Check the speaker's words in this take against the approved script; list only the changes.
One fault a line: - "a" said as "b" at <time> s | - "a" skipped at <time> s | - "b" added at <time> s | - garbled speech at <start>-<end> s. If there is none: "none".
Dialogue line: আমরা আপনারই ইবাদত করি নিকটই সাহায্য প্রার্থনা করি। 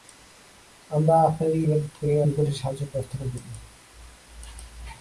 none